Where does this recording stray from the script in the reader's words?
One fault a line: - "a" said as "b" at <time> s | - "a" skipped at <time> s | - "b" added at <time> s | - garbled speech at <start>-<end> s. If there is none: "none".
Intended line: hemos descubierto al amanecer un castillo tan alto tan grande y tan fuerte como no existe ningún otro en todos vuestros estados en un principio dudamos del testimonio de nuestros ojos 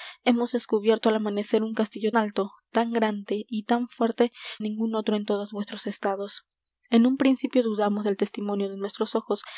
- "tan" skipped at 2.1 s
- "como no existe" skipped at 4.3 s